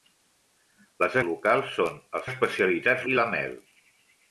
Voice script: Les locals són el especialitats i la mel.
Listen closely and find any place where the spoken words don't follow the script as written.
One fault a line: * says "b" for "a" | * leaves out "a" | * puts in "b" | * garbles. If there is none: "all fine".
all fine